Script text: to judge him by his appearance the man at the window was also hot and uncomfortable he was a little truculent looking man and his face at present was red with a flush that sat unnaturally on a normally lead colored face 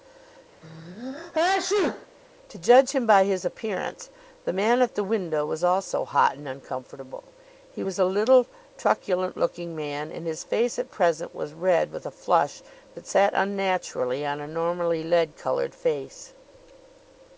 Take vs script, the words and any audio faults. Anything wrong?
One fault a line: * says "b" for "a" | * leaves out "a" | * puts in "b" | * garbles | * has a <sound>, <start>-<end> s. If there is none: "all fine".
* has a sneeze, 0.6-2.1 s